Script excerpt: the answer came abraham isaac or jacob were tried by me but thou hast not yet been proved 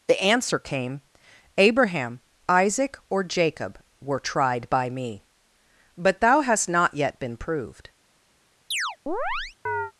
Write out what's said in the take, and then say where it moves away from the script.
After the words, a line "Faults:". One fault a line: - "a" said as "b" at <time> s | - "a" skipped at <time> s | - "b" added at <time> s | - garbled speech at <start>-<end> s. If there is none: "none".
the answer came abraham isaac or jacob were tried by me but thou hast not yet been proved
Faults:
none